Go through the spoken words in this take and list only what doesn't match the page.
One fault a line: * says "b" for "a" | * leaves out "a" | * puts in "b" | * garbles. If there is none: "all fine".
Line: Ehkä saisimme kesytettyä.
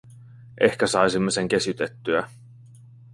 * puts in "sen"